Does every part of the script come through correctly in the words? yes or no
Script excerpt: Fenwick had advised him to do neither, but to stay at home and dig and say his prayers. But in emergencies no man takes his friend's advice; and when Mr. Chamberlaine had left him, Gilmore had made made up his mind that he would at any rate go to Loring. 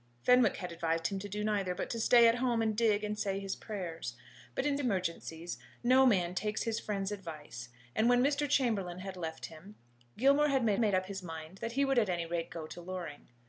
yes